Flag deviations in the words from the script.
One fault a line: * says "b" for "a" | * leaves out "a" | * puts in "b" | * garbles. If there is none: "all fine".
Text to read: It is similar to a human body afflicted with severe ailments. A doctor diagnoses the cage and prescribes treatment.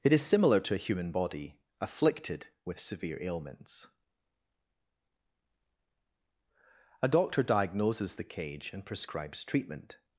all fine